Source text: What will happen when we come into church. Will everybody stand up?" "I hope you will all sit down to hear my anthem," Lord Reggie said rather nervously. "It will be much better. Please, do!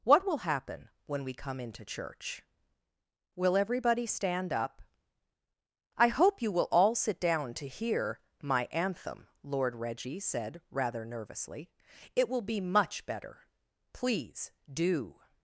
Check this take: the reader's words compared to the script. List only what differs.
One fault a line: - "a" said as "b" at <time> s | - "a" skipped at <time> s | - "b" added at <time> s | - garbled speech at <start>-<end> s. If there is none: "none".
none